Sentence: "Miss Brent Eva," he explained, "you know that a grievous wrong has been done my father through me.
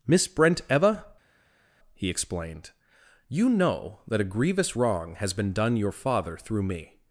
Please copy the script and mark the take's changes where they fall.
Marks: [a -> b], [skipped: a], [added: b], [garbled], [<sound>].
"Miss Brent Eva," he explained, "you know that a grievous wrong has been done [my -> your] father through me.